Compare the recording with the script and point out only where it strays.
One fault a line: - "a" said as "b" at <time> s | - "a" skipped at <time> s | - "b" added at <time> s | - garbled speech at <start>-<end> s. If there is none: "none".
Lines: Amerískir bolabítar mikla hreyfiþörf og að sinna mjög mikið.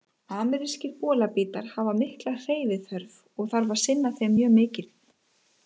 - "hafa" added at 1.7 s
- "þarf" added at 3.5 s
- "þeim" added at 4.2 s